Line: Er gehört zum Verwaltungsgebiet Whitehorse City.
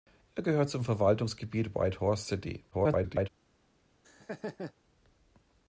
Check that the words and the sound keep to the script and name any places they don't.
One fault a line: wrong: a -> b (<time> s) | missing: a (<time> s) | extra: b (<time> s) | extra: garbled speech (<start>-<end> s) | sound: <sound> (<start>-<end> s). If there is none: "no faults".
extra: garbled speech (2.7-3.3 s)
sound: laugh (4.0-4.7 s)